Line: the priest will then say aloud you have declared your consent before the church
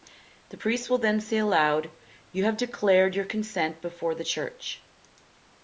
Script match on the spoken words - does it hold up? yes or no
yes